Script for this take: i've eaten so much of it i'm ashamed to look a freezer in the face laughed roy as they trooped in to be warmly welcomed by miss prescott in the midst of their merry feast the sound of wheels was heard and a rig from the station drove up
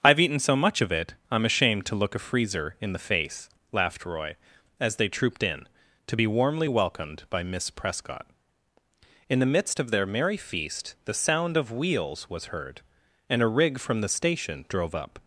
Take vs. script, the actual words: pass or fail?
pass